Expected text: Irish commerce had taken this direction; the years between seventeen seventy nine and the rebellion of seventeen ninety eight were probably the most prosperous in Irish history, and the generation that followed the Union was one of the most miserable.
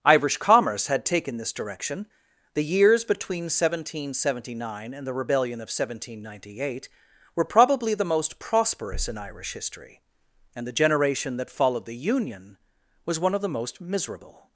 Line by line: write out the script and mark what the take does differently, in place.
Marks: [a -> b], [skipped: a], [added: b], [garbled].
Irish commerce had taken this direction; the years between seventeen seventy nine and the rebellion of seventeen ninety eight were probably the most prosperous in Irish history, and the generation that followed the Union was one of the most miserable.